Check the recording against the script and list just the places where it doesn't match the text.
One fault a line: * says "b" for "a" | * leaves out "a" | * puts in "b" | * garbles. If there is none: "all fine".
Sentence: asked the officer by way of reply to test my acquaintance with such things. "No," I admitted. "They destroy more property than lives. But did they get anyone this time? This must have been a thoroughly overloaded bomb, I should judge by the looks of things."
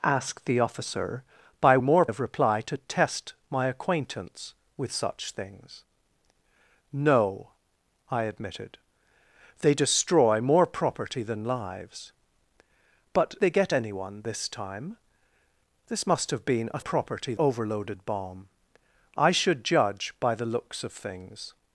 * says "more" for "way"
* leaves out "did"
* says "property" for "thoroughly"